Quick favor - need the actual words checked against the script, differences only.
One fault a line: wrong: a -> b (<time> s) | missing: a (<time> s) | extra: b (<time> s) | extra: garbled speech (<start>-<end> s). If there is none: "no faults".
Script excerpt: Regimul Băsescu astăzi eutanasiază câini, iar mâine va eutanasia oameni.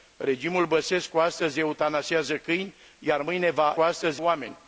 wrong: eutanasia -> astăzi (3.8 s)